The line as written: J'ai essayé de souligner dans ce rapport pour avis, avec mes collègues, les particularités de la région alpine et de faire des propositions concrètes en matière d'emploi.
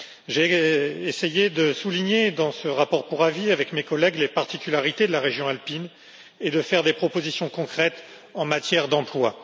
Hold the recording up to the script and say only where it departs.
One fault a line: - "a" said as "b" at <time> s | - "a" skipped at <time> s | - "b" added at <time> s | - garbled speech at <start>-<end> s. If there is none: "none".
none